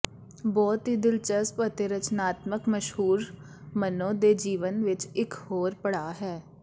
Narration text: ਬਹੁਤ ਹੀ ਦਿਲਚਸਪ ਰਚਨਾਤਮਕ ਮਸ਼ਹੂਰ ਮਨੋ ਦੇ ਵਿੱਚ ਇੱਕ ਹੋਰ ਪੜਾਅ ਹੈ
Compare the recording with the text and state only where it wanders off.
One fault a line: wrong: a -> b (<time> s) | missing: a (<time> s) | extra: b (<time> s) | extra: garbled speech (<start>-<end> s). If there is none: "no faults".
extra: ਅਤੇ (1.6 s)
extra: ਜੀਵਨ (4.3 s)